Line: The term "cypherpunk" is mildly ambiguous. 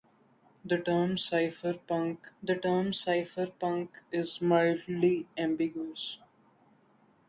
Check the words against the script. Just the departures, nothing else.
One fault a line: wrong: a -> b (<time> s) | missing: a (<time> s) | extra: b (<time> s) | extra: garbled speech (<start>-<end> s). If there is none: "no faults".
extra: the term cypherpunk (2.4 s)